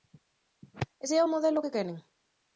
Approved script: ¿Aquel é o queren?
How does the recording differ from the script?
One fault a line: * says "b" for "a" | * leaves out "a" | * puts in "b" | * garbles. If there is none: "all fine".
* says "Ese" for "Aquel"
* puts in "modelo que"